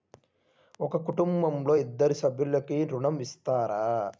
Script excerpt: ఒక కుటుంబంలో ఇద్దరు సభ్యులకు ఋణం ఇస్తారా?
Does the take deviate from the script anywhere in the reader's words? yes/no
no